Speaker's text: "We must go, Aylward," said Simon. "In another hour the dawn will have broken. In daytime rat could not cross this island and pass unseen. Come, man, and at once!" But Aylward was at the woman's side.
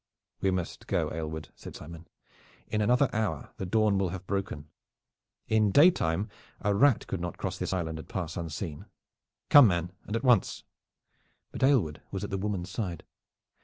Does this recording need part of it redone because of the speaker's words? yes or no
yes